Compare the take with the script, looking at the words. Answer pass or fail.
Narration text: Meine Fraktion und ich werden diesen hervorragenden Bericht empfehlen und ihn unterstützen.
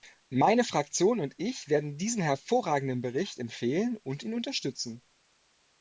pass